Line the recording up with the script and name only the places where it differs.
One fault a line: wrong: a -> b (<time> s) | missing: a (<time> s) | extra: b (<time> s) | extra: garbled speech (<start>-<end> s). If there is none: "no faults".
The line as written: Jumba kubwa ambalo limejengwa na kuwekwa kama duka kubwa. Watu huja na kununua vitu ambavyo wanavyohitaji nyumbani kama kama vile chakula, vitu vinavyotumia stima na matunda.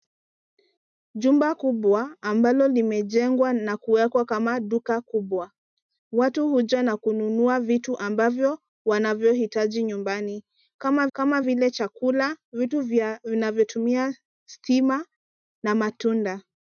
no faults